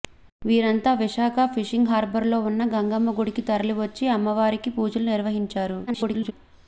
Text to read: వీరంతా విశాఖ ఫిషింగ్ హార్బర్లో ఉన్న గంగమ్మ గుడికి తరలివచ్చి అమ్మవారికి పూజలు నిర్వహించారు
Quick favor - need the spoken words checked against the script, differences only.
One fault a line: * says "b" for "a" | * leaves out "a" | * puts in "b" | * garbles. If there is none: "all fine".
* garbles